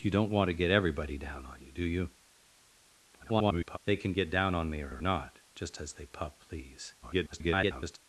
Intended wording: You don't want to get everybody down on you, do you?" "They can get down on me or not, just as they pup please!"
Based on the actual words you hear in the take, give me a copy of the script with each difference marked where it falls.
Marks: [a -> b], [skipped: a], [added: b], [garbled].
You don't want to get everybody down on you, do you?" [garbled] "They can get down on me or [added: or] not, just as they pup please!" [garbled]